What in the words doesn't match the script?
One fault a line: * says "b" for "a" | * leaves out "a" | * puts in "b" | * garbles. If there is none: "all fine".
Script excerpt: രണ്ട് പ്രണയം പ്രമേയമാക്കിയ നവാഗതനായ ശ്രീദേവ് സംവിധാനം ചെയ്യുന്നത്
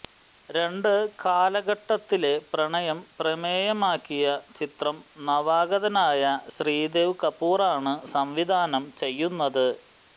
* puts in "കാലഘട്ടത്തിലെ"
* puts in "ചിത്രം"
* puts in "കപൂറാണ്"